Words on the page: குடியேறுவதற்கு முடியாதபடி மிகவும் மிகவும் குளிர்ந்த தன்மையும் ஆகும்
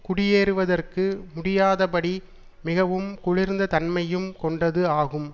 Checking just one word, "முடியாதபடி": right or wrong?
right